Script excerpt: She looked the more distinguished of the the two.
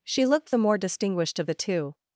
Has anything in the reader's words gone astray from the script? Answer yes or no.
yes